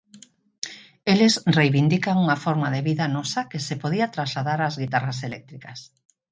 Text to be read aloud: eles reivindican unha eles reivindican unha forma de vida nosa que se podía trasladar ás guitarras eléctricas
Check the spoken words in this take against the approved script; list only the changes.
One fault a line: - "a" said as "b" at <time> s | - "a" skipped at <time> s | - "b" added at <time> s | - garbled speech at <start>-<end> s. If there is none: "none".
- "eles reivindican unha" skipped at 2.4 s